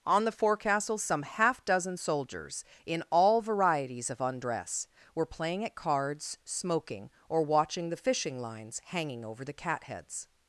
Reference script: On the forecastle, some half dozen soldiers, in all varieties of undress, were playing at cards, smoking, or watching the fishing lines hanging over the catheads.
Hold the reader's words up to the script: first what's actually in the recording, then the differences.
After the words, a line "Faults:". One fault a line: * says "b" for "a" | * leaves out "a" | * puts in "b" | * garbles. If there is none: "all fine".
On the forecastle, some half dozen soldiers, in all varieties of undress, were playing at cards, smoking, or watching the fishing lines hanging over the catheads.
Faults:
all fine